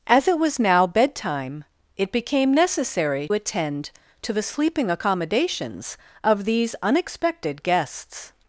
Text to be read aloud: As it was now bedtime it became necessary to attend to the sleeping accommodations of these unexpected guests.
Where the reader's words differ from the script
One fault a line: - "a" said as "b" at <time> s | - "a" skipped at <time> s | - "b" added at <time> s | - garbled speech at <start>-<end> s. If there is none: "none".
- "to" skipped at 3.3 s